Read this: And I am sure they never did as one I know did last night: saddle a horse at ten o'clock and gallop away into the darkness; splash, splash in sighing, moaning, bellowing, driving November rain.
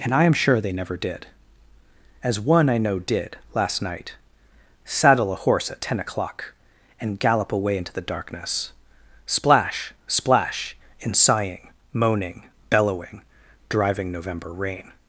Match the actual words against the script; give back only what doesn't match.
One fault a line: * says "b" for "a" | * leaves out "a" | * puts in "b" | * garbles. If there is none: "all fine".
all fine